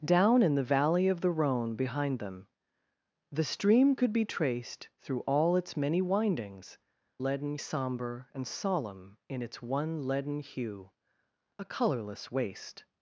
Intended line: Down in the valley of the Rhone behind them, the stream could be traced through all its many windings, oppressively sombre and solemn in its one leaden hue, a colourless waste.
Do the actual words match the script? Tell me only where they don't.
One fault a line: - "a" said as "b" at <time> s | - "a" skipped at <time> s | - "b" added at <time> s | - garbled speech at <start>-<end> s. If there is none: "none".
- "oppressively" said as "leaden" at 7.2 s